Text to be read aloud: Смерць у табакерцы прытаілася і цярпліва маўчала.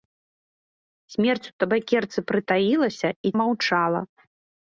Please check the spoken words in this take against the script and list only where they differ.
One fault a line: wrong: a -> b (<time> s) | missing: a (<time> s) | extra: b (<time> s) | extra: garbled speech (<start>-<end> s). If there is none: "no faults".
missing: цярпліва (3.3 s)